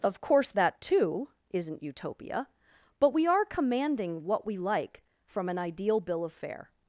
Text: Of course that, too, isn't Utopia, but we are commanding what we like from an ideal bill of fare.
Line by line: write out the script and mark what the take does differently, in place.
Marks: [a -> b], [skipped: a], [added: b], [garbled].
Of course that, too, isn't Utopia, but we are commanding what we like from an ideal bill of fare.